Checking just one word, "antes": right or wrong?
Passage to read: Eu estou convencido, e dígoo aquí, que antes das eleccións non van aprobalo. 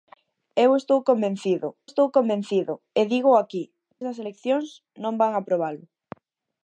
wrong